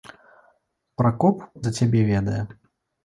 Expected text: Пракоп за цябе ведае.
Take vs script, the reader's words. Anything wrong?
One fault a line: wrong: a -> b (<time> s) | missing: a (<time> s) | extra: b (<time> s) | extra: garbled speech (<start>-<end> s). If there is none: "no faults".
no faults